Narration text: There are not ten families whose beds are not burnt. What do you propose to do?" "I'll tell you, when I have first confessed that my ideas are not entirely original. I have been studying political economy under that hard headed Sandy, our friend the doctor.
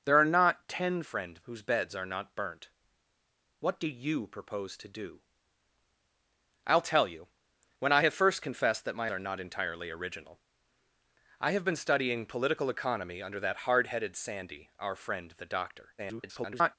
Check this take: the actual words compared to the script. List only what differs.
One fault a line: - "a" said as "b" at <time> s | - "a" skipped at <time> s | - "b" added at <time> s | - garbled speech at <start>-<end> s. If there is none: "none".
- "families" said as "friend" at 1.0 s
- "ideas" skipped at 9.1 s
- garbled speech at 16.0-16.8 s